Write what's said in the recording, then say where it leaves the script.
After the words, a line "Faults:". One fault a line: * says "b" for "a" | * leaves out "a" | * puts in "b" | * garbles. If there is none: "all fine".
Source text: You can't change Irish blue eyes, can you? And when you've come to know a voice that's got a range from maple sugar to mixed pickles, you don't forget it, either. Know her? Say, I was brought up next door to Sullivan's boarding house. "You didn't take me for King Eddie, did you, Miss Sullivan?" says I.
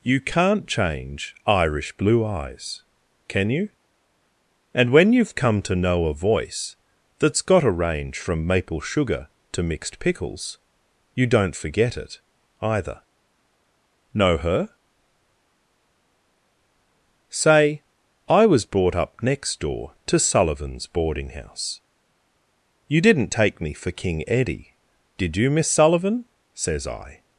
You can't change Irish blue eyes, can you? And when you've come to know a voice that's got a range from maple sugar to mixed pickles, you don't forget it, either. Know her? Say, I was brought up next door to Sullivan's boarding house. "You didn't take me for King Eddie, did you, Miss Sullivan?" says I.
Faults:
all fine